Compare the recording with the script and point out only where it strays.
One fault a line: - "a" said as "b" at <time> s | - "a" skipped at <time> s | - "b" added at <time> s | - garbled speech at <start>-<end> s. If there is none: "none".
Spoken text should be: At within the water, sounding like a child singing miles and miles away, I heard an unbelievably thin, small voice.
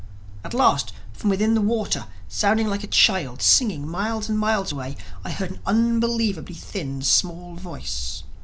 - "last from" added at 0.6 s